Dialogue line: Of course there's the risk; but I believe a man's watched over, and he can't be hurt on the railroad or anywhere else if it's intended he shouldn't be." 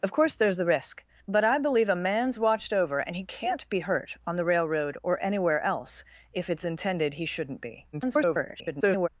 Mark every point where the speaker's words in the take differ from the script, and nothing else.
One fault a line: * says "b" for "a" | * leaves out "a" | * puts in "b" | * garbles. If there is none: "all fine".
* garbles